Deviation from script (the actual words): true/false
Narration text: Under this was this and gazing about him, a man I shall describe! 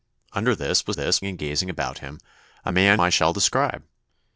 false